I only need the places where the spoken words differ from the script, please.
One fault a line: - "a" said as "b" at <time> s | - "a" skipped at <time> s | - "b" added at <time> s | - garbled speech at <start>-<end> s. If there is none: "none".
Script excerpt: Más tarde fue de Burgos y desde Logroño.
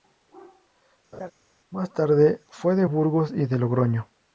- "desde" said as "de" at 3.4 s